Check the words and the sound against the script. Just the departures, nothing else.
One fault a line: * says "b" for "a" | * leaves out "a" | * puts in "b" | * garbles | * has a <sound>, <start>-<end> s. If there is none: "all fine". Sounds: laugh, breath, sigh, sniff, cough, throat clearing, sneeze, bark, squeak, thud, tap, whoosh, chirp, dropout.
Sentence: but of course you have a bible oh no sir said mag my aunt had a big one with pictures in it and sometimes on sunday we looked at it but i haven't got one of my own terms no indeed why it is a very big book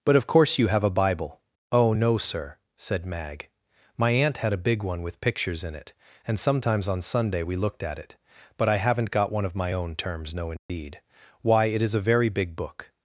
* has a dropout, 10.6-10.7 s